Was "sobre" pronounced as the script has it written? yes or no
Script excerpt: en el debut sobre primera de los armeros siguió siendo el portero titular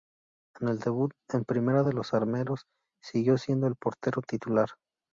no